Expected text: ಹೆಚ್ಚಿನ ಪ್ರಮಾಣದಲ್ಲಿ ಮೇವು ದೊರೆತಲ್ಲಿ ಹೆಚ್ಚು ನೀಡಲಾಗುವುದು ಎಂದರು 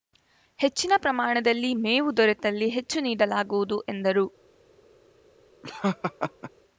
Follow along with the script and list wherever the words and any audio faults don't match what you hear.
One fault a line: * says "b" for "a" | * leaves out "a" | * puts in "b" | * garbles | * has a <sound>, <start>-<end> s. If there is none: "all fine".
* has a laugh, 5.6-6.5 s